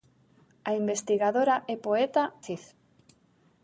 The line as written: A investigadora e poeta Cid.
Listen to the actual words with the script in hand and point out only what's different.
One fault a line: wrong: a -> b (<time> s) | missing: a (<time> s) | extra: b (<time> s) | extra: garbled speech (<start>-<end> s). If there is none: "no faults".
no faults